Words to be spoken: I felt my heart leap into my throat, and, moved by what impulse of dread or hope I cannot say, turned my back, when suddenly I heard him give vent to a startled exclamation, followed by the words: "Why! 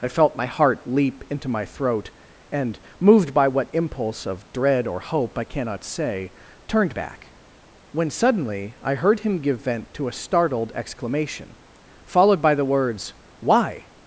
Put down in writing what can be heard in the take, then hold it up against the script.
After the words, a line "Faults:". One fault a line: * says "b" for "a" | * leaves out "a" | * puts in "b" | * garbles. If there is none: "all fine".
I felt my heart leap into my throat, and, moved by what impulse of dread or hope I cannot say, turned back, when suddenly I heard him give vent to a startled exclamation, followed by the words: "Why!
Faults:
* leaves out "my"